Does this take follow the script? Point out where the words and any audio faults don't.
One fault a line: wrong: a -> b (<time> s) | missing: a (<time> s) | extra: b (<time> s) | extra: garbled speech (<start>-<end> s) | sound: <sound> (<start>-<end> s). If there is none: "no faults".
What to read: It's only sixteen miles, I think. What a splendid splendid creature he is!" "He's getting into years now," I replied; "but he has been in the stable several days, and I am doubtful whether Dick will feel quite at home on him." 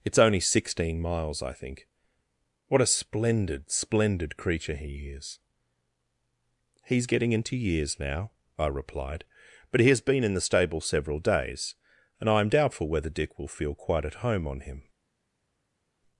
no faults